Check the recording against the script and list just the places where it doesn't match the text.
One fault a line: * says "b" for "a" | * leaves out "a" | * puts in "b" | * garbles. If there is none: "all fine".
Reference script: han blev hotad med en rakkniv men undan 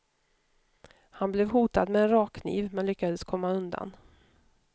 * puts in "lyckades komma"